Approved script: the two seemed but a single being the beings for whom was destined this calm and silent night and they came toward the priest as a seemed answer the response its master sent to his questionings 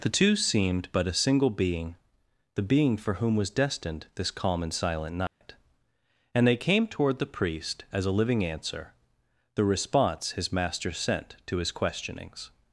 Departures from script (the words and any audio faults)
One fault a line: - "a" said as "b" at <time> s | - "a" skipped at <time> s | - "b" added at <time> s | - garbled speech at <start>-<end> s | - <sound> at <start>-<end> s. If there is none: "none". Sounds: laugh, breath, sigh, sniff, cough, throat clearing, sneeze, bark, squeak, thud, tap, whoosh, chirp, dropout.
- "beings" said as "being" at 2.6 s
- dropout at 5.3-5.4 s
- "seemed" said as "living" at 8.1 s
- "its" said as "his" at 10.3 s